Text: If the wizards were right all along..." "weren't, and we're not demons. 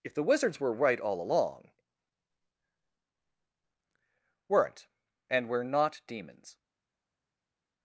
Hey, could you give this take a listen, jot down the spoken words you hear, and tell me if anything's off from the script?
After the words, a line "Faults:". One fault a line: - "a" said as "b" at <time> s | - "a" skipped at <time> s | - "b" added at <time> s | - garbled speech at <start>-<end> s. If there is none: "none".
If the wizards were right all along..." "weren't, and we're not demons.
Faults:
none